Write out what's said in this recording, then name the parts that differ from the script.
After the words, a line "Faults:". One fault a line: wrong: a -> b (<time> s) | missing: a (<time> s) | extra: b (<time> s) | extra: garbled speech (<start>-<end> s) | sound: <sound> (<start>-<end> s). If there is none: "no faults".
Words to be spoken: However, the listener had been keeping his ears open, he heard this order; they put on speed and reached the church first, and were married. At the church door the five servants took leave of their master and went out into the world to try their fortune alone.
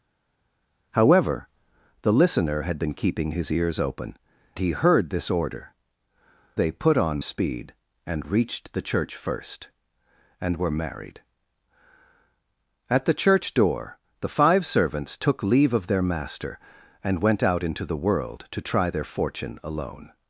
However, the listener had been keeping his ears open, he heard this order; they put on speed and reached the church first, and were married. At the church door the five servants took leave of their master and went out into the world to try their fortune alone.
Faults:
no faults